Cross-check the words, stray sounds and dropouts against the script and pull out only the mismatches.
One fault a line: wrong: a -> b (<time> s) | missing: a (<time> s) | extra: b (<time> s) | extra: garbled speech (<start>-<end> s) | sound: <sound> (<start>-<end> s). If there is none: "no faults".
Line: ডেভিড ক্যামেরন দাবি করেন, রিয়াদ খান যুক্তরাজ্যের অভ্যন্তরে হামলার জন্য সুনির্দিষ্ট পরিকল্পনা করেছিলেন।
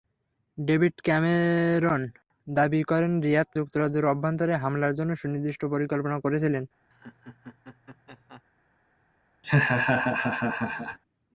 missing: খান (3.5 s)
sound: laugh (6.9-8.4 s)
sound: laugh (9.4-11.0 s)